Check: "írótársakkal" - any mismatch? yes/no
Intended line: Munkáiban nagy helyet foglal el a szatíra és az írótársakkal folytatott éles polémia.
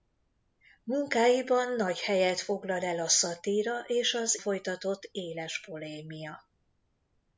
yes